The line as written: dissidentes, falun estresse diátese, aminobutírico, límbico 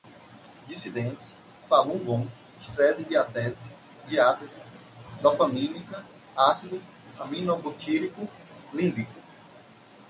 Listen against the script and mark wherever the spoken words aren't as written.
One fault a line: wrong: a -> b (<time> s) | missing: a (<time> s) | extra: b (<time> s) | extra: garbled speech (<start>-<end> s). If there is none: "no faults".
extra: gong (2.0 s)
extra: diátese dopamínica ácido (4.1 s)